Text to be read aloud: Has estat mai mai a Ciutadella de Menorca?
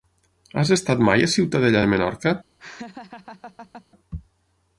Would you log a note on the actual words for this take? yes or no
yes